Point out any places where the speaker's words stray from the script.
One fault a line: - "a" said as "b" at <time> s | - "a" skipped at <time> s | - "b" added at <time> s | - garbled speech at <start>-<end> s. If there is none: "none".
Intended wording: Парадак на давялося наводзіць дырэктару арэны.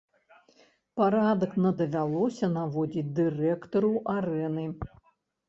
none